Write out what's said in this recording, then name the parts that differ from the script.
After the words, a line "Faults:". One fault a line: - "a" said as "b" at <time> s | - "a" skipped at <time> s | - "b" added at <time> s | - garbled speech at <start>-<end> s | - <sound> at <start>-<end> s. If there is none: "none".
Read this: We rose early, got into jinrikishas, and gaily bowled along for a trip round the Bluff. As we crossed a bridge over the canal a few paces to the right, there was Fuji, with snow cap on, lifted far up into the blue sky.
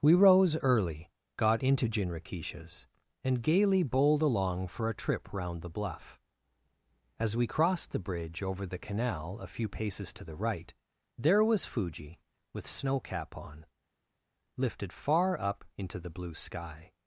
We rose early, got into jinrikishas, and gaily bowled along for a trip round the Bluff. As we crossed the bridge over the canal a few paces to the right, there was Fuji, with snow cap on, lifted far up into the blue sky.
Faults:
- "a" said as "the" at 7.9 s